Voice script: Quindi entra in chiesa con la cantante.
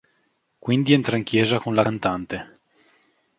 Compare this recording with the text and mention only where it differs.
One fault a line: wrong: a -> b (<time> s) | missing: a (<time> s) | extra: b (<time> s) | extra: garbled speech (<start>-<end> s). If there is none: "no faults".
no faults